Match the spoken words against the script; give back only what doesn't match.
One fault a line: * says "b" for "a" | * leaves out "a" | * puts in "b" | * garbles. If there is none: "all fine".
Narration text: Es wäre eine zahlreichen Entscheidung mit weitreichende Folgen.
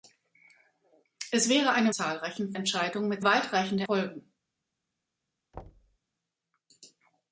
all fine